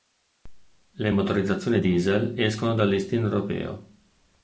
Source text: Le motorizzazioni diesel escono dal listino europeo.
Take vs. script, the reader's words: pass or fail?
pass